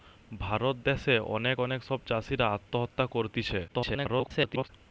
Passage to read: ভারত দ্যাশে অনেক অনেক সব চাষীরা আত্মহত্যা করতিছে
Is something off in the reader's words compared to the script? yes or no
yes